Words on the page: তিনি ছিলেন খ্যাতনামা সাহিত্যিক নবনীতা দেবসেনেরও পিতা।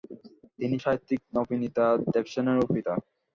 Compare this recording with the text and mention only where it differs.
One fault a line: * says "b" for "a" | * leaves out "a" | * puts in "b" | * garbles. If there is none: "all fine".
* leaves out "ছিলেন খ্যাতনামা"